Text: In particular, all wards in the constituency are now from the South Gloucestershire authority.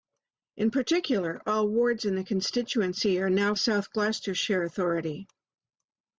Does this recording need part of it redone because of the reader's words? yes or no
yes